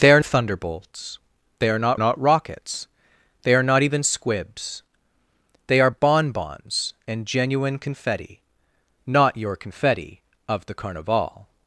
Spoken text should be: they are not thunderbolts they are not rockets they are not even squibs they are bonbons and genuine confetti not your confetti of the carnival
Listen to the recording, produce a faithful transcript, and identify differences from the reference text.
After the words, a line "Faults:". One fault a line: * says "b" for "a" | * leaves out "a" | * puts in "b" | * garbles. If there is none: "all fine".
they are thunderbolts they are not not rockets they are not even squibs they are bonbons and genuine confetti not your confetti of the carnival
Faults:
* leaves out "not"
* puts in "not"